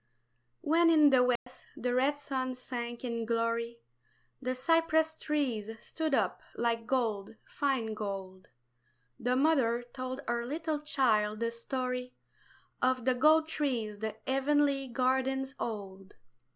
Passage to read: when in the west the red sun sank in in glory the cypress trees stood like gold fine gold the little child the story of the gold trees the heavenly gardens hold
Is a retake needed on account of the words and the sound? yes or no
yes